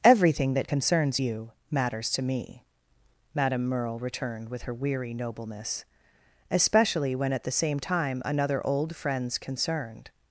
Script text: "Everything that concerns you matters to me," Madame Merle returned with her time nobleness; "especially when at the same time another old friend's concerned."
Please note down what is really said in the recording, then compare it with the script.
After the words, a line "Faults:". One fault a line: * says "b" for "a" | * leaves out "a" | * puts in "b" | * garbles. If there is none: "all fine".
"Everything that concerns you matters to me," Madame Merle returned with her weary nobleness; "especially when at the same time another old friend's concerned."
Faults:
* says "weary" for "time"